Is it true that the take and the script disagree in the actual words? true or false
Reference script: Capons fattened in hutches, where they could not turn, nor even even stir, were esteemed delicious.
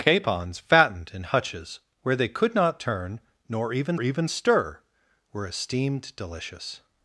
false